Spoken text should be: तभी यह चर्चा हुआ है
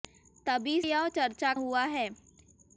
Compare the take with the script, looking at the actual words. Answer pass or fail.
pass